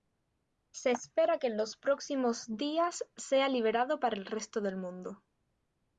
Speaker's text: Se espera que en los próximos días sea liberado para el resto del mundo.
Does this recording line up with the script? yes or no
yes